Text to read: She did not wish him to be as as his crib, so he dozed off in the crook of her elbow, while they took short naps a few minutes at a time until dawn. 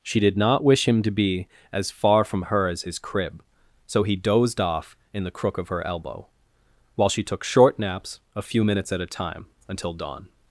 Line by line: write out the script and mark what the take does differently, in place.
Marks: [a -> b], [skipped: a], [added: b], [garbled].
She did not wish him to be as [added: far from her] as his crib, so he dozed off in the crook of her elbow, while [they -> she] took short naps a few minutes at a time until dawn.